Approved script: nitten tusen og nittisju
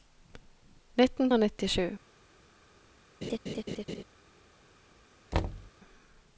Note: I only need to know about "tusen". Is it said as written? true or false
false